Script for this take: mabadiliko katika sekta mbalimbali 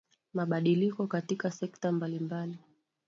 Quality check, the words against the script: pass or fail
pass